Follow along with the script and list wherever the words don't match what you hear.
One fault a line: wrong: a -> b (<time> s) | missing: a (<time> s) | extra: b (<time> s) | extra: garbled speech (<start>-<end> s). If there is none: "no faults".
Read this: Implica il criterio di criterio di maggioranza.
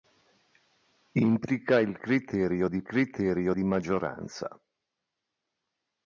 no faults